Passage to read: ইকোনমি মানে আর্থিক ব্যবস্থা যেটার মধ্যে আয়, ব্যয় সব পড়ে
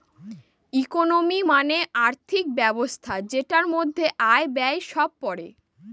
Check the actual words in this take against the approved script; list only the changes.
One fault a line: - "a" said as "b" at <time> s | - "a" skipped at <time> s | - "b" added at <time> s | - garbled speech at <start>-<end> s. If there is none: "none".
none